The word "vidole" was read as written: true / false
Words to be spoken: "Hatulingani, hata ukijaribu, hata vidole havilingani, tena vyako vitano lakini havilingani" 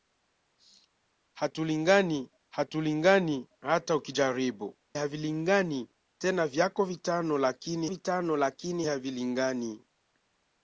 false